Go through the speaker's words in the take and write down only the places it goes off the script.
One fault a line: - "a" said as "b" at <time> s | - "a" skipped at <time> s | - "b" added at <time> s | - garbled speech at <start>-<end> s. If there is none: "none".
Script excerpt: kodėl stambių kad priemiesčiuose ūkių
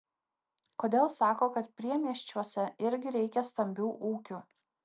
- "stambių" said as "sako" at 1.1 s
- "irgi reikia stambių" added at 2.9 s